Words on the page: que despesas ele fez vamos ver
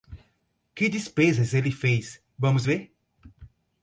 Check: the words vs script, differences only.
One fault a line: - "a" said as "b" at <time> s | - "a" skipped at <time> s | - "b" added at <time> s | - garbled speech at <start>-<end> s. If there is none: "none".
none